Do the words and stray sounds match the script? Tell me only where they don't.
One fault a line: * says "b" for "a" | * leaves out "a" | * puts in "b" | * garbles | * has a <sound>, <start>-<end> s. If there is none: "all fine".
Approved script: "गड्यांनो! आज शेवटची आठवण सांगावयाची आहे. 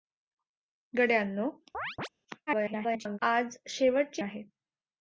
* has a chirp, 1.7-2.1 s
* garbles
* leaves out "आठवण सांगावयाची"